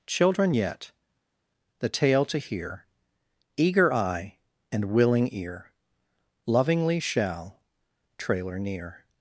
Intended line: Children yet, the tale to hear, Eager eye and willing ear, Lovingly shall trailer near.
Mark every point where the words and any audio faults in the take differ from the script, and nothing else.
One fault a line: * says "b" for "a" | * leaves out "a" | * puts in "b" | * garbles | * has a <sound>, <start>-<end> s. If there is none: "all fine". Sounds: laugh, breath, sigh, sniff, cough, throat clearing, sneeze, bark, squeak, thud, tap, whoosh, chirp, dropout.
all fine